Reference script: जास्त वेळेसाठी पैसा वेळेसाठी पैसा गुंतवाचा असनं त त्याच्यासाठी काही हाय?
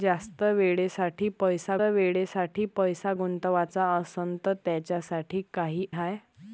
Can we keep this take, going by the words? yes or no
yes